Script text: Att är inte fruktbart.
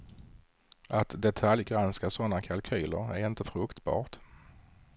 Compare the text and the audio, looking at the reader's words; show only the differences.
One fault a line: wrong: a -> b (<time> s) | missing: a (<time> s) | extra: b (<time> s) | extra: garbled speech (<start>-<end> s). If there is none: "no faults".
extra: detaljgranska sådana kalkyler (1.2 s)